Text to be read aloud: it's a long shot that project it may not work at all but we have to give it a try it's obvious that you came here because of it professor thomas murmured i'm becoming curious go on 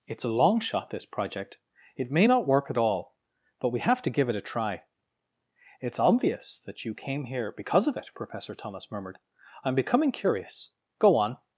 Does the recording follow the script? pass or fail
fail